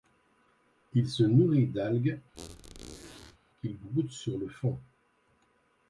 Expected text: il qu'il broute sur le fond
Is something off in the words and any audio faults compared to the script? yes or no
yes